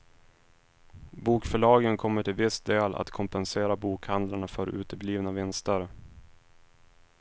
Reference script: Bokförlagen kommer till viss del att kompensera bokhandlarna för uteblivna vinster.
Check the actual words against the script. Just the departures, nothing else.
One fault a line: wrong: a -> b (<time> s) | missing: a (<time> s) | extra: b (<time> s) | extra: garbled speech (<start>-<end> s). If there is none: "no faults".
no faults